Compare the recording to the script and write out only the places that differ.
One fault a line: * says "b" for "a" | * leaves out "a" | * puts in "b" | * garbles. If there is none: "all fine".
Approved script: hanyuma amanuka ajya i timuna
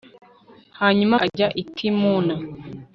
* leaves out "amanuka"